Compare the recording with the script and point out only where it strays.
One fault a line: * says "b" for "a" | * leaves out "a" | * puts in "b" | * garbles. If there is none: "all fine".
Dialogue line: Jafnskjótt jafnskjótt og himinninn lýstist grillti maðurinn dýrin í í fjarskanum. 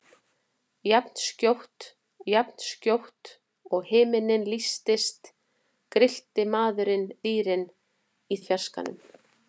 all fine